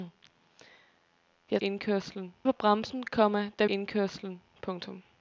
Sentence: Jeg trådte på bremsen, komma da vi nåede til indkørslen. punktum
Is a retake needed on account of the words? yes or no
yes